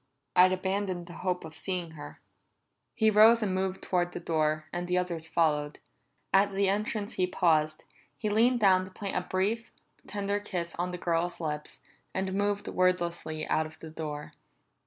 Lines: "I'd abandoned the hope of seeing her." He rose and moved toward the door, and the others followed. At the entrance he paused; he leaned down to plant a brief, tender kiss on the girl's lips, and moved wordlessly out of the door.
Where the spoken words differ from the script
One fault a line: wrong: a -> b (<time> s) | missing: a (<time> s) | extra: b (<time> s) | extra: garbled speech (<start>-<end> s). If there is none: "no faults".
no faults